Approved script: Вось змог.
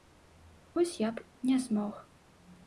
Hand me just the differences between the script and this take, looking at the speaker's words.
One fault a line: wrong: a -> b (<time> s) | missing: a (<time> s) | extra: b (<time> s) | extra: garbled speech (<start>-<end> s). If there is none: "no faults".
extra: я б не (1.0 s)